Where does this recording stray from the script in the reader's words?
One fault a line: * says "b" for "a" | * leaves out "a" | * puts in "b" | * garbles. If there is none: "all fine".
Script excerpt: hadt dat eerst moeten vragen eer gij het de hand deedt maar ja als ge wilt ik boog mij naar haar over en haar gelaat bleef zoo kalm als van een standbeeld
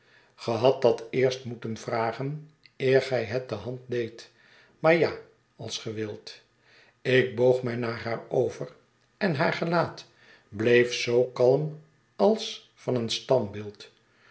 all fine